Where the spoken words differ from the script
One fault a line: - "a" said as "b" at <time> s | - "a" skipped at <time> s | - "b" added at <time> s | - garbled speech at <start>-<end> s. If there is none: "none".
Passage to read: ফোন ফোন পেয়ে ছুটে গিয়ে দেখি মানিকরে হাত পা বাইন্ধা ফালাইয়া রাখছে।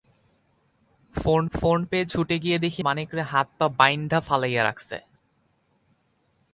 none